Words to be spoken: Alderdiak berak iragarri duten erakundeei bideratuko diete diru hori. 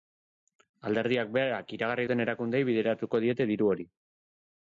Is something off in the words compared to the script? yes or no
no